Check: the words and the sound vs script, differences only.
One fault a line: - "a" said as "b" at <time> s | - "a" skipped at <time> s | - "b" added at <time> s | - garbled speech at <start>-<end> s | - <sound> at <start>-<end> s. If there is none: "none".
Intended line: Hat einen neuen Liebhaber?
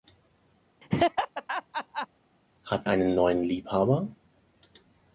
- laugh at 0.8-2.1 s